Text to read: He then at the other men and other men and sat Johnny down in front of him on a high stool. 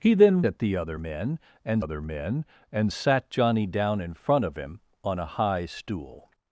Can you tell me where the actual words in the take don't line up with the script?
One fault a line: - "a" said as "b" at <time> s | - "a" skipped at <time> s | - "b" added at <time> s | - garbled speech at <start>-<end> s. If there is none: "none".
none